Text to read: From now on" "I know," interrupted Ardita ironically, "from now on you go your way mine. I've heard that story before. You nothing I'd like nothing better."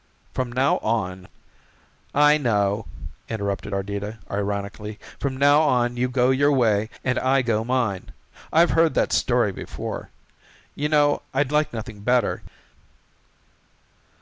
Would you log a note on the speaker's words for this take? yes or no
yes